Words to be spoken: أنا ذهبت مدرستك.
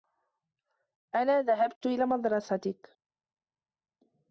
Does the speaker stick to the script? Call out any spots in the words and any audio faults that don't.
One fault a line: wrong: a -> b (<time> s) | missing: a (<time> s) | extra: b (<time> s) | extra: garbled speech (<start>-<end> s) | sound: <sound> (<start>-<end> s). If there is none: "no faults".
extra: إلى (1.9 s)